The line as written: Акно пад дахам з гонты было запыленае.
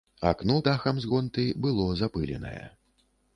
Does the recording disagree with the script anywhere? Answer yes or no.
yes